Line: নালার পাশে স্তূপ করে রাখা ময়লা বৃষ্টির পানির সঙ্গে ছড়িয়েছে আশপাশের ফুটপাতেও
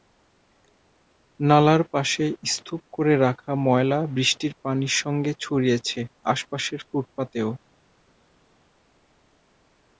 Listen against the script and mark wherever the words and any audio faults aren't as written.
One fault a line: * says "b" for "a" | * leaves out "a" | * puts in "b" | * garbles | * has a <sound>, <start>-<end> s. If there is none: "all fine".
all fine